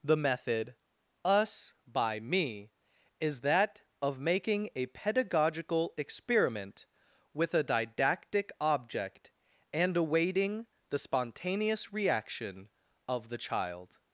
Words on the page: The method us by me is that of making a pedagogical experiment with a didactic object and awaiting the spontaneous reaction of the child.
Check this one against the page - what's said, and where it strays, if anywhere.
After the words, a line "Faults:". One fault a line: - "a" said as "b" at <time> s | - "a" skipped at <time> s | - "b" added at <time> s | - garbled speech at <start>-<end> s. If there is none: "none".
The method us by me is that of making a pedagogical experiment with a didactic object and awaiting the spontaneous reaction of the child.
Faults:
none